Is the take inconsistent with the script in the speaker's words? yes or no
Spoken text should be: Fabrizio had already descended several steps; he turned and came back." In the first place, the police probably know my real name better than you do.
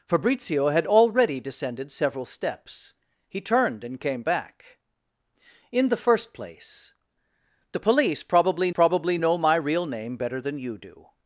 yes